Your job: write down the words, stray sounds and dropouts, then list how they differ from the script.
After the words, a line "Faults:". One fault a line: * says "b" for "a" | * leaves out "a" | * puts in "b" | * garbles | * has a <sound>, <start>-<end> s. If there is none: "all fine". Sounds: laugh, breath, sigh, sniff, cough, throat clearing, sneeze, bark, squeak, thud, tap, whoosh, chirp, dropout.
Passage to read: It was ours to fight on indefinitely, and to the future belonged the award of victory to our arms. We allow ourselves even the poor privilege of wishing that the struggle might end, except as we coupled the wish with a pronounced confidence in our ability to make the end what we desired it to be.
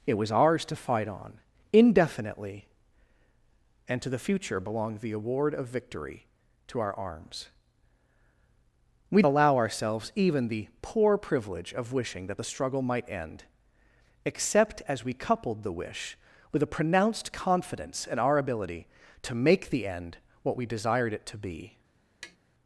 It was ours to fight on indefinitely, and to the future belonged the award of victory to our arms. We allow ourselves even the poor privilege of wishing that the struggle might end, except as we coupled the wish with a pronounced confidence in our ability to make the end what we desired it to be.
Faults:
* has a tap, 22.2-22.4 s